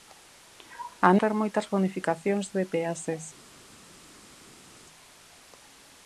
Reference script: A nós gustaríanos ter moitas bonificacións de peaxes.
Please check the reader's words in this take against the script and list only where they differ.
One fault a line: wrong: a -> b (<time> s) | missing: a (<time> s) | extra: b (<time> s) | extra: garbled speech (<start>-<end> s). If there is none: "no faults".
missing: nós gustaríanos (1.1 s)